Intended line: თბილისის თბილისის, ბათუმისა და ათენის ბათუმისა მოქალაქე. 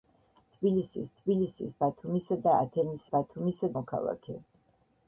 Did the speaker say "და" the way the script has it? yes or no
yes